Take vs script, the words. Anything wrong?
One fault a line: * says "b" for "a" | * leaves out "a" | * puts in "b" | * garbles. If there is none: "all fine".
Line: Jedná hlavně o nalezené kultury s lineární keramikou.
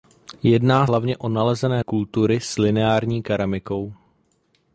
all fine